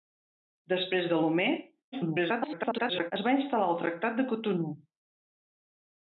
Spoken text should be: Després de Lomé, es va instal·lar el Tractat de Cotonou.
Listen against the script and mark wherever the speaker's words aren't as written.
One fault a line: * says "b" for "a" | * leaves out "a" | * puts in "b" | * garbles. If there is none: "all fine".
* garbles